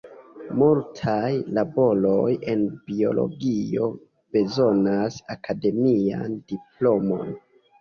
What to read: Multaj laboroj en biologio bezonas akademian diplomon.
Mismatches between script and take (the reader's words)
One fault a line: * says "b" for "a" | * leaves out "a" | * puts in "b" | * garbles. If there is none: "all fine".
all fine